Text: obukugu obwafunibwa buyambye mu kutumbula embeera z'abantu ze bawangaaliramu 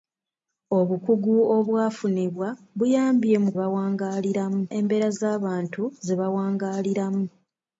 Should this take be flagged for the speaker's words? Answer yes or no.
yes